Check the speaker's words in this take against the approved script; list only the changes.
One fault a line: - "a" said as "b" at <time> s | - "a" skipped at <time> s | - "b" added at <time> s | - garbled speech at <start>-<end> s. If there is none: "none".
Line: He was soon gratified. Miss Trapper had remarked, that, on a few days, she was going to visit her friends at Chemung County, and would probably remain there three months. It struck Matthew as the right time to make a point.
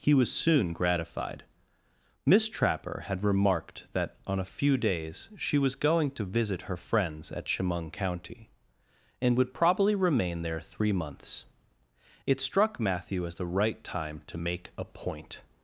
none